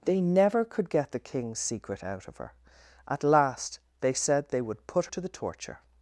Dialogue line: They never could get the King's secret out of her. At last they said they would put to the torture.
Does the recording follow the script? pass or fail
pass